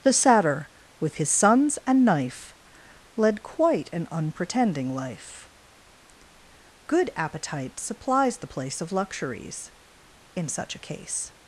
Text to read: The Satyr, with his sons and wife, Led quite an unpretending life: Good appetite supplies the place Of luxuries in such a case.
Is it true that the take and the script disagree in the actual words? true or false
true